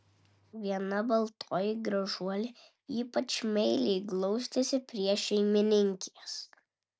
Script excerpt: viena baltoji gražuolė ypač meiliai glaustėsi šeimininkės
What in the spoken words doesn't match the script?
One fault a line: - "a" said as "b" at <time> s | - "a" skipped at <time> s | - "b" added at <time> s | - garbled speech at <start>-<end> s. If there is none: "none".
- "prie" added at 4.9 s